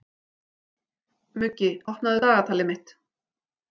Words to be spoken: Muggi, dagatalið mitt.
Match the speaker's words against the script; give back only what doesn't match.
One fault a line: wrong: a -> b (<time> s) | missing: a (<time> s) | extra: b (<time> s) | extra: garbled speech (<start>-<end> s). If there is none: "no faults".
extra: opnaðu (1.9 s)